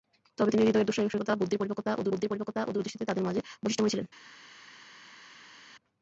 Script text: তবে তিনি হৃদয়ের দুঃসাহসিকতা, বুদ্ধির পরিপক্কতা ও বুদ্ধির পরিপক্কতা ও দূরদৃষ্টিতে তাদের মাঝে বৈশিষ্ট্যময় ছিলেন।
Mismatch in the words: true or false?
false